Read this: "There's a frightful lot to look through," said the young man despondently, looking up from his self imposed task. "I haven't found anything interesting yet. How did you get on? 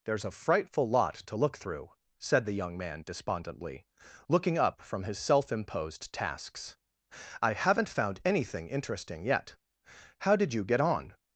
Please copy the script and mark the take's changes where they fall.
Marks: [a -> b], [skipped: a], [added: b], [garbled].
"There's a frightful lot to look through," said the young man despondently, looking up from his self imposed [task. -> tasks] "I haven't found anything interesting yet. How did you get on?